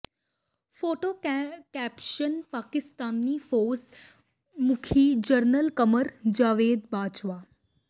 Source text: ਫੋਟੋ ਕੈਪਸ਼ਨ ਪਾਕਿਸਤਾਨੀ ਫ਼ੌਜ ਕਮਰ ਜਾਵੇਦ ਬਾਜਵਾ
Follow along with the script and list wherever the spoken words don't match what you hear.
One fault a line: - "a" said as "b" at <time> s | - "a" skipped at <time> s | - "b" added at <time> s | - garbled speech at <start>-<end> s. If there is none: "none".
- "ਮੁਖੀ ਜਰਨਲ" added at 4.6 s